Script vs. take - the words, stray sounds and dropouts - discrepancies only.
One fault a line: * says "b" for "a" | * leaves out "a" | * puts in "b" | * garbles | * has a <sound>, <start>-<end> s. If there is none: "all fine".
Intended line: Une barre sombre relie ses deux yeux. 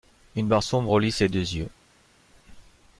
all fine